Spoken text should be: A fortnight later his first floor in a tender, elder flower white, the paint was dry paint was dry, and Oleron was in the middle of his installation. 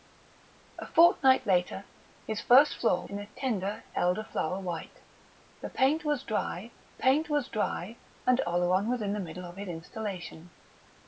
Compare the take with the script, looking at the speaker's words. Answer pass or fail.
pass